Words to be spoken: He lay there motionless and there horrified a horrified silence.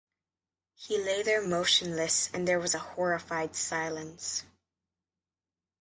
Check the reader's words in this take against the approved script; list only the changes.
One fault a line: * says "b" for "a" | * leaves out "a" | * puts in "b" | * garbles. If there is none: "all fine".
* says "was" for "horrified"